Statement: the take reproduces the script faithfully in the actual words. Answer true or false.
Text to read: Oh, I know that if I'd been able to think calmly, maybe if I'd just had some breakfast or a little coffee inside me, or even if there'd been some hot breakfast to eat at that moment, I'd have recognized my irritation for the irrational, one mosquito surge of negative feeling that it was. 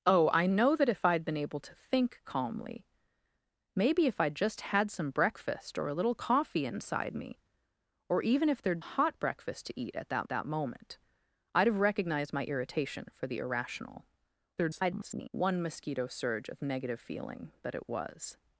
false